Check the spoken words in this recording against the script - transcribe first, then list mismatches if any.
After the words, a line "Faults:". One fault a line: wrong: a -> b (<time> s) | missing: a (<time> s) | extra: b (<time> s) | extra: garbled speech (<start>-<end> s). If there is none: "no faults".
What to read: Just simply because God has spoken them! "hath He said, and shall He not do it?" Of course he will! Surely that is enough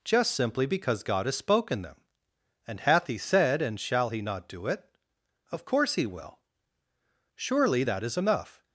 Just simply because God has spoken them! and "hath He said, and shall He not do it?" Of course he will! Surely that is enough
Faults:
extra: and (2.7 s)